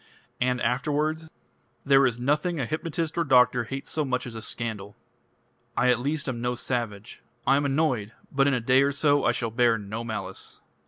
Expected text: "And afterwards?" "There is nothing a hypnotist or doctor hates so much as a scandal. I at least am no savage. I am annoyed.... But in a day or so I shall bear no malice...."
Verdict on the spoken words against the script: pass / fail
pass